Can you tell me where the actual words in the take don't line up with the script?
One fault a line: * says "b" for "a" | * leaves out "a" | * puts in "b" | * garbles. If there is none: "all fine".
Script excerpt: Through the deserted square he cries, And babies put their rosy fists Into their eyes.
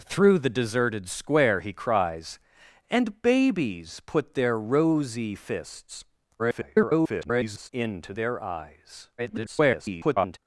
* garbles
* garbles